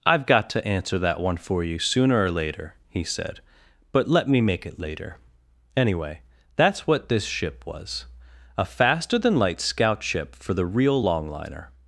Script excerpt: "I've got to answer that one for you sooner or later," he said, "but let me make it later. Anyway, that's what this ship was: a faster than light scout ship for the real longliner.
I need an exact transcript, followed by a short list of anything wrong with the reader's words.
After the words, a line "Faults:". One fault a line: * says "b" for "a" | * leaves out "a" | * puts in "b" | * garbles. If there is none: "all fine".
"I've got to answer that one for you sooner or later," he said, "but let me make it later. Anyway, that's what this ship was: a faster than light scout ship for the real longliner.
Faults:
all fine